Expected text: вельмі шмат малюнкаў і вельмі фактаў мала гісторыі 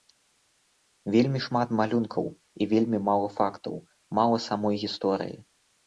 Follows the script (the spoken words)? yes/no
no